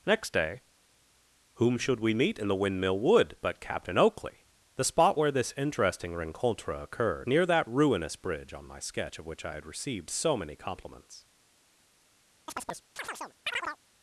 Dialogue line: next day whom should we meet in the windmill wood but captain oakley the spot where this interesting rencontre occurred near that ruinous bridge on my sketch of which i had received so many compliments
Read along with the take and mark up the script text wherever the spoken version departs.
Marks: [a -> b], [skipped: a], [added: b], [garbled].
next day whom should we meet in the windmill wood but captain oakley the spot where this interesting rencontre occurred near that ruinous bridge on my sketch of which i had received so many compliments